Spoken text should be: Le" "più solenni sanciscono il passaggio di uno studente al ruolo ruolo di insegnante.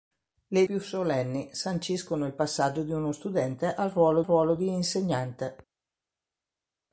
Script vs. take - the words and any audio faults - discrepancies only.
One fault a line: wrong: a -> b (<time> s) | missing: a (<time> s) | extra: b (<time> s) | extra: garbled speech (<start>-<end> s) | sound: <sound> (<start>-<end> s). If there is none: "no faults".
no faults